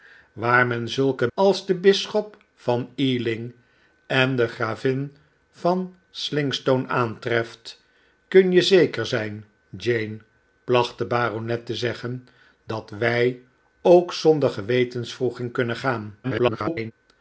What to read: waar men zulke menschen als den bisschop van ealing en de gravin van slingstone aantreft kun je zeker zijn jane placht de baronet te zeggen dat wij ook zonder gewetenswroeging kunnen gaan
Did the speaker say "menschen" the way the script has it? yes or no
no